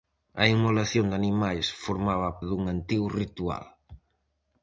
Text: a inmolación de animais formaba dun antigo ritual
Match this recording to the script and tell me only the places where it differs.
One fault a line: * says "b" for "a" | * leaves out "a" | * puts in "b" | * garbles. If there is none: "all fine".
all fine